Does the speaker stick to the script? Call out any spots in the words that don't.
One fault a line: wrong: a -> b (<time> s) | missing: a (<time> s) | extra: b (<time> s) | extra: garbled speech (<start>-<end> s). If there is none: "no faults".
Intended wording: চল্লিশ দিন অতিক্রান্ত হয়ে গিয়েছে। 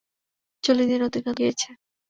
missing: হয়ে (1.4 s)